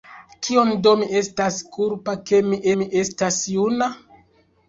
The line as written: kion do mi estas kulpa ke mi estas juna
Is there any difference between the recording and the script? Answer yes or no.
yes